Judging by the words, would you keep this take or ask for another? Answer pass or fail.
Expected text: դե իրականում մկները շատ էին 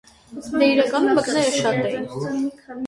pass